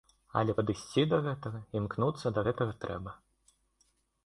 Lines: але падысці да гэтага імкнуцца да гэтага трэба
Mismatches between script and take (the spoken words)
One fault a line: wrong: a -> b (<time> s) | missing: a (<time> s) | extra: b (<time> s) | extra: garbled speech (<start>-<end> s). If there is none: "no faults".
no faults